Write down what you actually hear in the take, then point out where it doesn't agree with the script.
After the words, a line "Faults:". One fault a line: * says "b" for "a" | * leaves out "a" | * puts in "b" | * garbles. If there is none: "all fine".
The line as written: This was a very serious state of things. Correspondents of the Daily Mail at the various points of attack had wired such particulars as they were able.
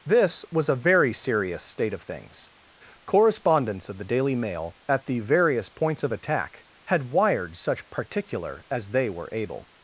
This was a very serious state of things. Correspondents of the Daily Mail at the various points of attack had wired such particular as they were able.
Faults:
* says "particular" for "particulars"